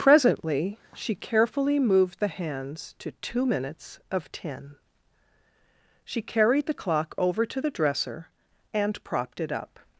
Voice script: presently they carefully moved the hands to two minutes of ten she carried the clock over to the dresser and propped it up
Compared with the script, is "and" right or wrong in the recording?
right